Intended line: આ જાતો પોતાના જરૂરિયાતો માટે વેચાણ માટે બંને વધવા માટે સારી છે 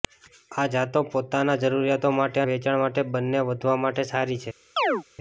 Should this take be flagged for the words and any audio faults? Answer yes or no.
yes